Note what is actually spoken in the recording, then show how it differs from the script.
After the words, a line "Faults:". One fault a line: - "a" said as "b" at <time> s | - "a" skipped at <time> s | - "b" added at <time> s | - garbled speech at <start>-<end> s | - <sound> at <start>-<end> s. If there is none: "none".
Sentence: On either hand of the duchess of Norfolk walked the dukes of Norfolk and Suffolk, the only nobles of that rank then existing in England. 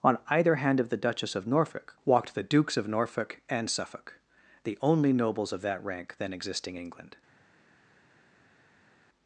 On either hand of the duchess of Norfolk walked the dukes of Norfolk and Suffolk, the only nobles of that rank then existing England.
Faults:
- "in" skipped at 6.8 s